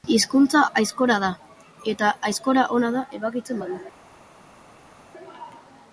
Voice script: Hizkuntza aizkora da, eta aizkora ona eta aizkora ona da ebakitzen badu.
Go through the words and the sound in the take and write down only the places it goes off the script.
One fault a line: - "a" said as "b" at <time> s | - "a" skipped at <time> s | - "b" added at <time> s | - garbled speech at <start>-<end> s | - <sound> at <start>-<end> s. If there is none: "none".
- "eta aizkora ona" skipped at 2.9 s